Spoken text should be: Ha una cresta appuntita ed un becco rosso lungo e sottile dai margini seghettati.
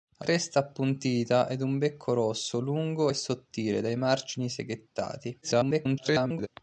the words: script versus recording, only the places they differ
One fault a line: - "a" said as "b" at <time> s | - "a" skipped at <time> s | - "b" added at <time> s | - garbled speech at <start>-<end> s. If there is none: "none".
- "una" skipped at 0.2 s
- garbled speech at 5.4-6.5 s